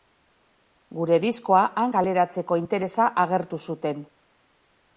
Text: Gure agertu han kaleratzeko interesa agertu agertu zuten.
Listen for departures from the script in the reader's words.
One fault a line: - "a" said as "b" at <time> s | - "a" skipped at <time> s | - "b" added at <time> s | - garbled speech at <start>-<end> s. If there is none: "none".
- "agertu" said as "diskoa" at 1.2 s
- "agertu" skipped at 3.6 s